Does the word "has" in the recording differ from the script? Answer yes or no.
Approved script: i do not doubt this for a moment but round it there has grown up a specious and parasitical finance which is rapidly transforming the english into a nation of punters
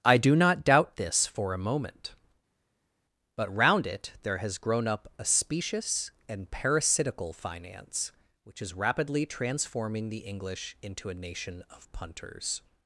no